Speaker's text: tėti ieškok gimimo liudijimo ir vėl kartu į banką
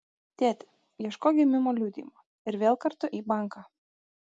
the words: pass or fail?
pass